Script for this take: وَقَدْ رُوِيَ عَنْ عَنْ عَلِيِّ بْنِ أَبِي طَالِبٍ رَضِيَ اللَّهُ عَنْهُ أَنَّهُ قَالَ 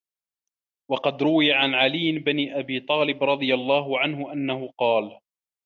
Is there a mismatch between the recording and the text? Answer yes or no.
yes